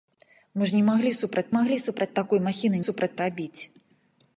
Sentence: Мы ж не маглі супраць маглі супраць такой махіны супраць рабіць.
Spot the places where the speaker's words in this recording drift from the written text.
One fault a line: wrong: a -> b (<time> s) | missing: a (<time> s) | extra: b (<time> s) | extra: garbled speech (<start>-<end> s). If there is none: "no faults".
no faults